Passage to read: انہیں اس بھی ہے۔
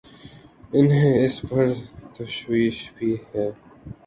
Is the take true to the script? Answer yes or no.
no